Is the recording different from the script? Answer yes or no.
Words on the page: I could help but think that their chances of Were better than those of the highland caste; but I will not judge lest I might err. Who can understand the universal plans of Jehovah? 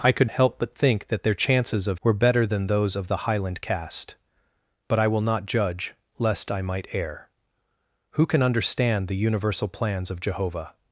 no